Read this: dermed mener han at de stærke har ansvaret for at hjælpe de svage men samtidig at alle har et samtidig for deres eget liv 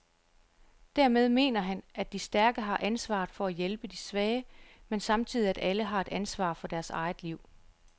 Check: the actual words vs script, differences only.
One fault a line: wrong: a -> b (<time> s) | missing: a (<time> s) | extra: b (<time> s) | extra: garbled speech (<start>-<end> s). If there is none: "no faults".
wrong: samtidig -> ansvar (6.1 s)